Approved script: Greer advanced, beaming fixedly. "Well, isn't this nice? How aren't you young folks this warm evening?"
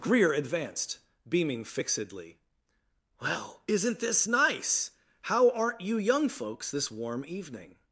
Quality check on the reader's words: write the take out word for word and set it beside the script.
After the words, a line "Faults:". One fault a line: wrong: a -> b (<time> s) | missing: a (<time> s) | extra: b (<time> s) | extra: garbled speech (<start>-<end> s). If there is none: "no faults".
Greer advanced, beaming fixedly. "Well, isn't this nice? How aren't you young folks this warm evening?"
Faults:
no faults